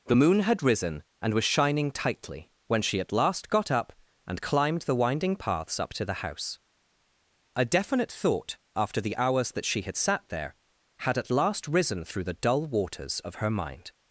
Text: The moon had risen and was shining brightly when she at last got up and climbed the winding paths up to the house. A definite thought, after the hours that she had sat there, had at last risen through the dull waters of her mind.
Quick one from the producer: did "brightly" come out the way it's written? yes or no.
no